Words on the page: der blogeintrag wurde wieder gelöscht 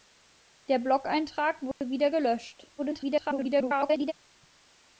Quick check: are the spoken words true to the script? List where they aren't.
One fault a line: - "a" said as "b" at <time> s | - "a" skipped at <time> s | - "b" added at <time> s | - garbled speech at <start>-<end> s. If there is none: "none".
- garbled speech at 2.8-4.1 s